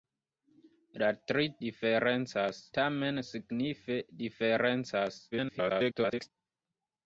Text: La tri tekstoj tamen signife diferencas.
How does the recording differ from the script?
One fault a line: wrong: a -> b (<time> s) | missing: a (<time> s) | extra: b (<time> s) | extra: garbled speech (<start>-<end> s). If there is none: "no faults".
wrong: tekstoj -> diferencas (1.7 s)
extra: garbled speech (5.3-6.3 s)